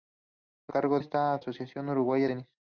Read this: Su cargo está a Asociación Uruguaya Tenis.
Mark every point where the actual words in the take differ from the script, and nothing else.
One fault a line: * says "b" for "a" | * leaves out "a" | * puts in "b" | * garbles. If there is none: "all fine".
all fine